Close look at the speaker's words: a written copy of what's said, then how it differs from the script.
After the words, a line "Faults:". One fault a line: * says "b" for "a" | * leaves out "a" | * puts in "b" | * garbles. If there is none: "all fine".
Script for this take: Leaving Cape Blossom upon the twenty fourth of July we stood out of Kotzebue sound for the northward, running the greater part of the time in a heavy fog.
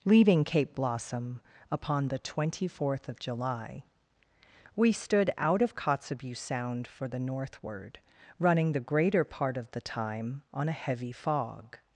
Leaving Cape Blossom upon the twenty fourth of July we stood out of Kotzebue sound for the northward, running the greater part of the time on a heavy fog.
Faults:
* says "on" for "in"